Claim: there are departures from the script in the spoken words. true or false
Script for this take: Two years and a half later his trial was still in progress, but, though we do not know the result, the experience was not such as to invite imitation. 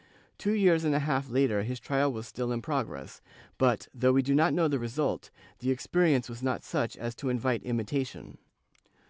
false